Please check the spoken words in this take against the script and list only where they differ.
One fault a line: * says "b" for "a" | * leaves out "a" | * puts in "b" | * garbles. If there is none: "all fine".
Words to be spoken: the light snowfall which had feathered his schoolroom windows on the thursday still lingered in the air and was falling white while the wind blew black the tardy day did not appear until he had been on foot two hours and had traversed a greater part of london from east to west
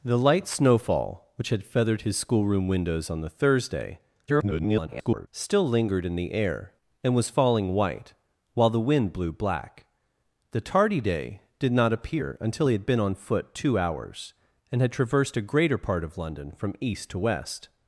* garbles